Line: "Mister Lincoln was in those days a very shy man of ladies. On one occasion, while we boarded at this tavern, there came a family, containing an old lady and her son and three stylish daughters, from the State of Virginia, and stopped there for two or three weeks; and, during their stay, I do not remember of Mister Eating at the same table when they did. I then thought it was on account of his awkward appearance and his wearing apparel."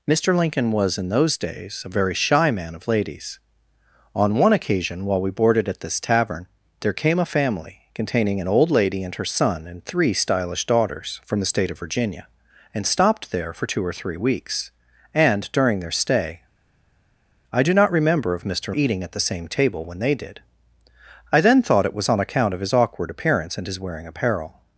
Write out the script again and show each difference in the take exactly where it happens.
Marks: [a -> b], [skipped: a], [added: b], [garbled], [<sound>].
"Mister Lincoln was in those days a very shy man of ladies. On one occasion, while we boarded at this tavern, there came a family, containing an old lady and her son and three stylish daughters, from the State of Virginia, and stopped there for two or three weeks; and, during their stay, I do not remember of Mister Eating at the same table when they did. I then thought it was on account of his awkward appearance and his wearing apparel."